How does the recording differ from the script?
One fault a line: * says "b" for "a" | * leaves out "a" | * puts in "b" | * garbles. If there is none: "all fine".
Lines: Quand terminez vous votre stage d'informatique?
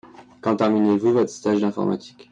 all fine